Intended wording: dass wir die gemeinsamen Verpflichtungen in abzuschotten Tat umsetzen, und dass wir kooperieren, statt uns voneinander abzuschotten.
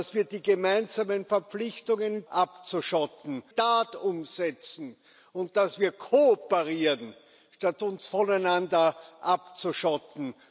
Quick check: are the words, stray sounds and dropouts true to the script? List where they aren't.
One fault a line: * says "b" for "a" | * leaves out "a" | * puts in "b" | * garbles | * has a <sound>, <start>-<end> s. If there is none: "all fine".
all fine